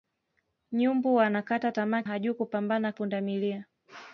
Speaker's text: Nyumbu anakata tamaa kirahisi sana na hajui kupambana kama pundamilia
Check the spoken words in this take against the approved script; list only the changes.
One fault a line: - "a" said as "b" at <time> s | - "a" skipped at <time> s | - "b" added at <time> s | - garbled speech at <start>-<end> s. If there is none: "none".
- "kirahisi sana na" skipped at 2.0 s
- "kama" skipped at 2.9 s